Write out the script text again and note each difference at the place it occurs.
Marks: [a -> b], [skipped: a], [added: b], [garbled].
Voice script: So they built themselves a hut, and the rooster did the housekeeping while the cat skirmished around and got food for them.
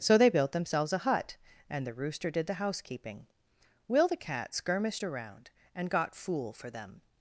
So they built themselves a hut, and the rooster did the housekeeping [while -> will] the cat skirmished around and got [food -> fool] for them.